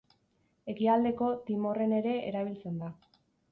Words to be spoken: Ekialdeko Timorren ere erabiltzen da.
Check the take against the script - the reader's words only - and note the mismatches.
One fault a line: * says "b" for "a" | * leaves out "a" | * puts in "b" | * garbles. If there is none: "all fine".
all fine